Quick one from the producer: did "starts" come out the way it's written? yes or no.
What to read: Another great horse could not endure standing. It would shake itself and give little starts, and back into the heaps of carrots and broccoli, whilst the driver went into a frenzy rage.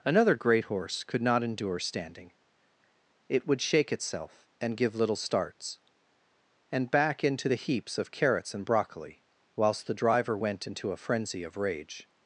yes